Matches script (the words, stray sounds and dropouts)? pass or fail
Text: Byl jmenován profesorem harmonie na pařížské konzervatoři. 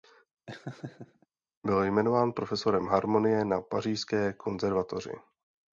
fail